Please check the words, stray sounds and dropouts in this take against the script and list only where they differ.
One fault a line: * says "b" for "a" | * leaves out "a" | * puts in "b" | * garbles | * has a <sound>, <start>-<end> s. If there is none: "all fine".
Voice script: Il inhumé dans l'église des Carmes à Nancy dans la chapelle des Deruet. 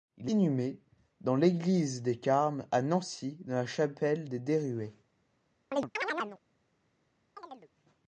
* has a chirp, 5.7-6.4 s
* has a chirp, 7.4-7.7 s